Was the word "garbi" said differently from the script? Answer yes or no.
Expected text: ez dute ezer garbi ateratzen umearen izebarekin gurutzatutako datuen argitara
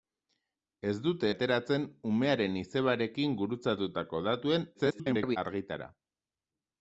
yes